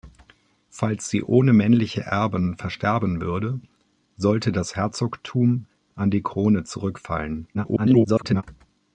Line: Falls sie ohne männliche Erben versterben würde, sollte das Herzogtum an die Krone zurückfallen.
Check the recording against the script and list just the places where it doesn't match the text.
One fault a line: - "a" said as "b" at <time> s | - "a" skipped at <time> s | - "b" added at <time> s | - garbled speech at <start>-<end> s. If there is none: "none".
- garbled speech at 7.5-8.4 s